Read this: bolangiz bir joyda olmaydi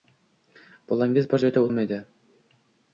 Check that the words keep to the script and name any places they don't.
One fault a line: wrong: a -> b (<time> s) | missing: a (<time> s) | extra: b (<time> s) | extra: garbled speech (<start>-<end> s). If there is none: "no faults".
no faults